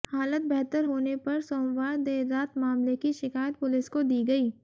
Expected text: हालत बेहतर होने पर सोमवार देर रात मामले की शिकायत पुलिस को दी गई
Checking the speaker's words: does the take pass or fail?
pass